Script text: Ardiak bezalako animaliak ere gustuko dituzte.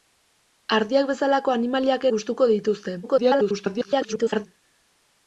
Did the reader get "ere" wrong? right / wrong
wrong